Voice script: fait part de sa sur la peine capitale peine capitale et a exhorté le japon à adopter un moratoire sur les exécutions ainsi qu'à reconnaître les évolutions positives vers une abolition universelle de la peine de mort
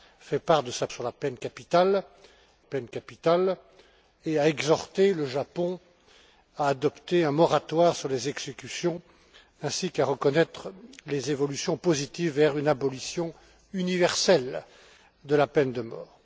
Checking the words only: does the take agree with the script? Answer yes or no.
yes